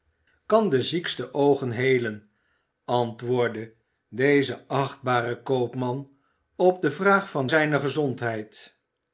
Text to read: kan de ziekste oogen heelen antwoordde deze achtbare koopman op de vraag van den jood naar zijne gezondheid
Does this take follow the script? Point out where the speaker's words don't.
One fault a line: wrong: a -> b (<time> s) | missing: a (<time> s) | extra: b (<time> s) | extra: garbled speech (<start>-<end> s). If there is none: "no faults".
missing: den jood naar (7.5 s)